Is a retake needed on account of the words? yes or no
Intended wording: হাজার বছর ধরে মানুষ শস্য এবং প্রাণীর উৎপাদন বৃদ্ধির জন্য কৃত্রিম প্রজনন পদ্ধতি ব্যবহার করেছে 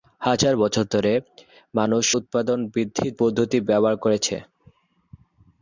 yes